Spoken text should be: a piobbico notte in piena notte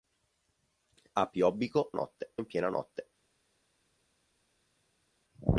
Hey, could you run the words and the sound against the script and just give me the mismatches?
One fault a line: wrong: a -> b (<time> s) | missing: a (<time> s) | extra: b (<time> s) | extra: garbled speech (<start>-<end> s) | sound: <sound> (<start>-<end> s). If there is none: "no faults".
no faults